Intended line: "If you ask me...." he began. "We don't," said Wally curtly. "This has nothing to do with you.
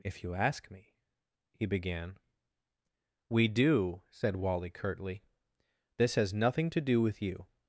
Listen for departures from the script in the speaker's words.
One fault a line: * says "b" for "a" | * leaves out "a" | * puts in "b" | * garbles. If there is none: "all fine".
* says "do" for "don't"